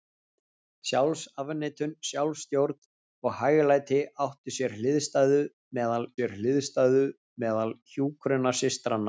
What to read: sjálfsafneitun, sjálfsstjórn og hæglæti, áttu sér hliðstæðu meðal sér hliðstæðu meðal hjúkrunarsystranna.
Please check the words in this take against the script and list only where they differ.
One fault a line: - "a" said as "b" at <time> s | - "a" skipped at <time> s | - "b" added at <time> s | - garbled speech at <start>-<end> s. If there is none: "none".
none